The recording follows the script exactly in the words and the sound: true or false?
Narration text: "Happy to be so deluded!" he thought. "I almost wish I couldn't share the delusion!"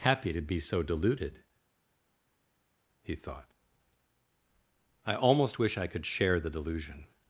false